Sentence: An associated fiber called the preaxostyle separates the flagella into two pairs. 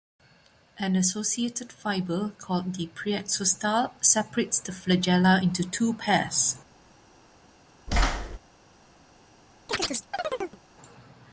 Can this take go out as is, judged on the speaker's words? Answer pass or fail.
pass